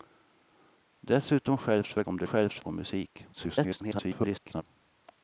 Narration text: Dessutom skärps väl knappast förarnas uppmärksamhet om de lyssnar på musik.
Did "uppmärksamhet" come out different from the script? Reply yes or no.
yes